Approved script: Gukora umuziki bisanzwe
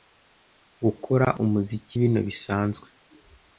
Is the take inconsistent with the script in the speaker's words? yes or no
yes